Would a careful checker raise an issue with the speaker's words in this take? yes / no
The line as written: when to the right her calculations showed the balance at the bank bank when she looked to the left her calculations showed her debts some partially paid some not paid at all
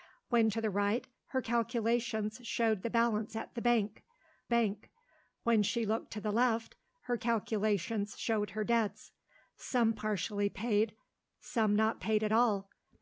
no